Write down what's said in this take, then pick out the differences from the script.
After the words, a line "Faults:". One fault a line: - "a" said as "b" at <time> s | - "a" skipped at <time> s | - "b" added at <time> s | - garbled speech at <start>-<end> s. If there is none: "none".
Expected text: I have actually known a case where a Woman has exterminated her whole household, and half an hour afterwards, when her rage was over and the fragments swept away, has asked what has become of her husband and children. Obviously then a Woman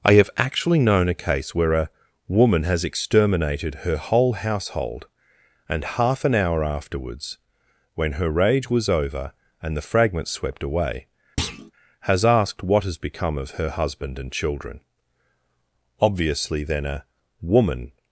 I have actually known a case where a Woman has exterminated her whole household, and half an hour afterwards, when her rage was over and the fragments swept away, has asked what has become of her husband and children. Obviously then a Woman
Faults:
none